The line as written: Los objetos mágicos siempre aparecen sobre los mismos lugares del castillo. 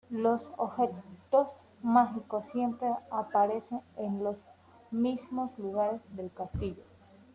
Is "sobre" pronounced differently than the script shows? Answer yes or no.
yes